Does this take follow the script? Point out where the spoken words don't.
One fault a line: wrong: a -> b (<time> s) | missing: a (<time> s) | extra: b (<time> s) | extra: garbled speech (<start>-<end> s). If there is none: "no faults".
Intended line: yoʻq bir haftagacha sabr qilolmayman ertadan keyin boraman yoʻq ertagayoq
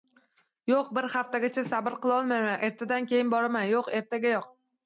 no faults